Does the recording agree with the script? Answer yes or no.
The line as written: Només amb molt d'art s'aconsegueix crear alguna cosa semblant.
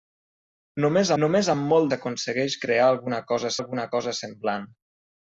no